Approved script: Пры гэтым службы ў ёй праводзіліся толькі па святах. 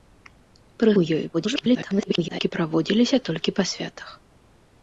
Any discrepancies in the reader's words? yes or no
yes